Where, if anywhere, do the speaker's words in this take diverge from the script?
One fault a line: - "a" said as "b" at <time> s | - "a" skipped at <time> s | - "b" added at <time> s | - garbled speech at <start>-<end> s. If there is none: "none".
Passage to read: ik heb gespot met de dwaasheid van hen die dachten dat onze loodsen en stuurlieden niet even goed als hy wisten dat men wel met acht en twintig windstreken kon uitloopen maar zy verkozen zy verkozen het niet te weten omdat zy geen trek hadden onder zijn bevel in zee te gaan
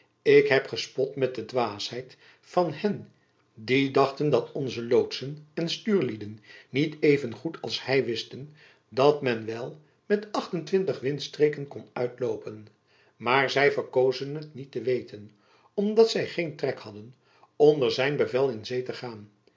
- "zy verkozen" skipped at 14.3 s